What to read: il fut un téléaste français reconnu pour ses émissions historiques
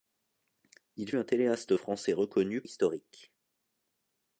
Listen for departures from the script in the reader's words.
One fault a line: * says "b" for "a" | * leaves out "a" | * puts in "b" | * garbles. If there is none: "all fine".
* leaves out "fut"
* leaves out "pour ses émissions"